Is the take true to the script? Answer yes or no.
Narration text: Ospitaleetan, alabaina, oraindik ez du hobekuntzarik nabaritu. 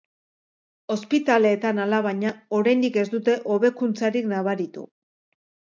no